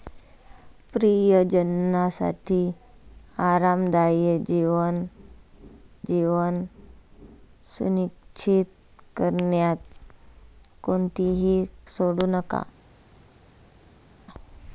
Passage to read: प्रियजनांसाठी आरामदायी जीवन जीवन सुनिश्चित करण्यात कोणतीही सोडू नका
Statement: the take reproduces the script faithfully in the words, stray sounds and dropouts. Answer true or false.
true